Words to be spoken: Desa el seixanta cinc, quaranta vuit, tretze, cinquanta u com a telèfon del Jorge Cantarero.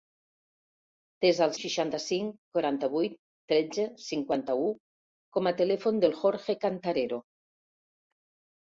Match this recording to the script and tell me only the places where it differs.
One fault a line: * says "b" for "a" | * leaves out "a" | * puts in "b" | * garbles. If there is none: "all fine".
all fine